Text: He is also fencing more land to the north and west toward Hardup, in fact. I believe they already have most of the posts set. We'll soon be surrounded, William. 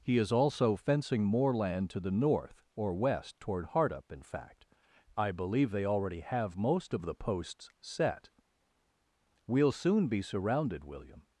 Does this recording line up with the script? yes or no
no